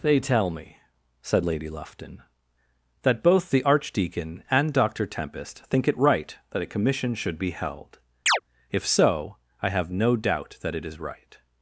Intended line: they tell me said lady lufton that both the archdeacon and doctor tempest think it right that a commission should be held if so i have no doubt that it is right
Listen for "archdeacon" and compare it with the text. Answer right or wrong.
right